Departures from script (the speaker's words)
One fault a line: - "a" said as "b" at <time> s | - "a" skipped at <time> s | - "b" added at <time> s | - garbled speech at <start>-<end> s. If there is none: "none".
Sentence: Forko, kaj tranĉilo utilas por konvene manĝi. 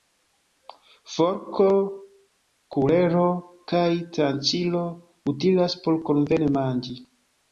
- "kulero" added at 2.8 s